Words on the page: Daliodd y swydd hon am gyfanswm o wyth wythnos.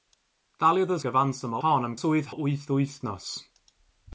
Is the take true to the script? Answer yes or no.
no